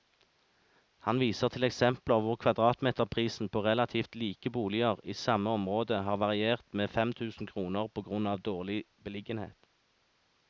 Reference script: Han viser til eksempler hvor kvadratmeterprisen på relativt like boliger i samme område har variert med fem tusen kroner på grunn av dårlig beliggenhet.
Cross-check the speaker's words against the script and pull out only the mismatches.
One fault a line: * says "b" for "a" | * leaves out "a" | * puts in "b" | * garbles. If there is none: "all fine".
all fine